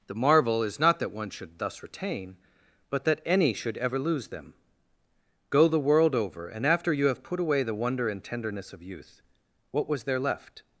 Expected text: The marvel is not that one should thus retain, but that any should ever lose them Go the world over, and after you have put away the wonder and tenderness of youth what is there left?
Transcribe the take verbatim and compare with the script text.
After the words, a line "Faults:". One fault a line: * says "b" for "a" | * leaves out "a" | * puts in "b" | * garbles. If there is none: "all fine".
The marvel is not that one should thus retain, but that any should ever lose them Go the world over, and after you have put away the wonder and tenderness of youth what was there left?
Faults:
* says "was" for "is"